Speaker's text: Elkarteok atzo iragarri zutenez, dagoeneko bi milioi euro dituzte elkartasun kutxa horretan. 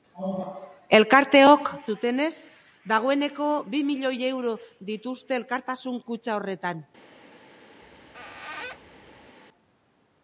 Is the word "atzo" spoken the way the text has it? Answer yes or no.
no